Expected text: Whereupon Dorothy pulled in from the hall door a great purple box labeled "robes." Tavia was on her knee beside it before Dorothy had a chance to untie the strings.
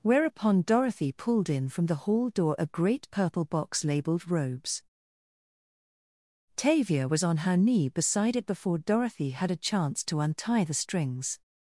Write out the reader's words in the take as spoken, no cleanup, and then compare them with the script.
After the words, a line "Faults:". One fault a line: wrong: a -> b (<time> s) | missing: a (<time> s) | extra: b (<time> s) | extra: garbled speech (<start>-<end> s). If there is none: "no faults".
Whereupon Dorothy pulled in from the hall door a great purple box labeled "robes." Tavia was on her knee beside it before Dorothy had a chance to untie the strings.
Faults:
no faults